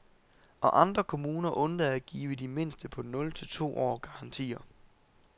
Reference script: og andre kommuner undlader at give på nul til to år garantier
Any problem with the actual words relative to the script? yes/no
yes